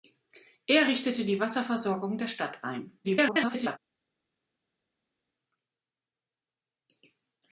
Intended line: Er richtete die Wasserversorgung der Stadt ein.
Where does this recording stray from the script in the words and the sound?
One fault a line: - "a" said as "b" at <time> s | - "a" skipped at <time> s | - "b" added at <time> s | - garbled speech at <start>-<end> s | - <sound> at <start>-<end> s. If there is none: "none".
- garbled speech at 3.0-3.8 s